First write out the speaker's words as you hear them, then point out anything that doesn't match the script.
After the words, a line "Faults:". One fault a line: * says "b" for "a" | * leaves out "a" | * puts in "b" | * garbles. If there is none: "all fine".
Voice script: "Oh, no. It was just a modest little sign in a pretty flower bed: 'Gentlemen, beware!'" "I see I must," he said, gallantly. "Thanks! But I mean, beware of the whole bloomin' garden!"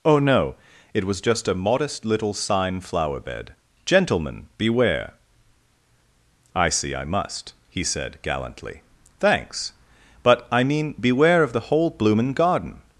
"Oh, no. It was just a modest little sign flower bed: 'Gentlemen, beware!'" "I see I must," he said, gallantly. "Thanks! But I mean, beware of the whole bloomin' garden!"
Faults:
* leaves out "in a pretty"